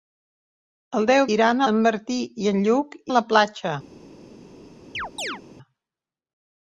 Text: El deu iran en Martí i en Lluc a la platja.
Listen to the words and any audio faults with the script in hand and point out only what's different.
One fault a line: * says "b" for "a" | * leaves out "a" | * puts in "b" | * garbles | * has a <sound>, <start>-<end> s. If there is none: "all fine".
* has a chirp, 4.9-5.4 s